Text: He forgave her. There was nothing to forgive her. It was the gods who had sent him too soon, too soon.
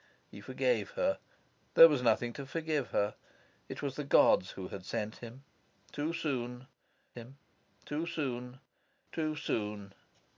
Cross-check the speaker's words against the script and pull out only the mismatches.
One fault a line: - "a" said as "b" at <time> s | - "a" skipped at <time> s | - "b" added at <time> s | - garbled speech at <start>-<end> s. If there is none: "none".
- "him too soon" added at 7.1 s